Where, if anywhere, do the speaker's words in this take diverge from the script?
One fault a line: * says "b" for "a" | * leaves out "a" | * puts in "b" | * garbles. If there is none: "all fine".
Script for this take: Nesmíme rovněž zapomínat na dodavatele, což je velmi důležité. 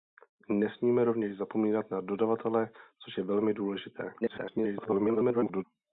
* garbles